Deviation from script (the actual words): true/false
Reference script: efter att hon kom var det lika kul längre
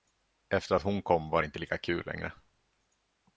true